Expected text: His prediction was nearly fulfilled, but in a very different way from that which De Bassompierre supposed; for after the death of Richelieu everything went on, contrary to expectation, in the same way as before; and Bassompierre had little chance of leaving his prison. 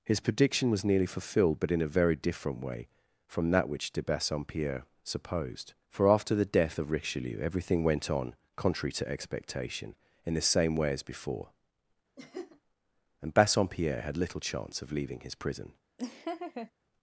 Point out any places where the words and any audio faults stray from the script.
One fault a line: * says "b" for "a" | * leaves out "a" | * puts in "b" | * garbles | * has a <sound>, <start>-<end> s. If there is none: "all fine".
* has a laugh, 12.2-12.6 s
* has a laugh, 16.0-16.7 s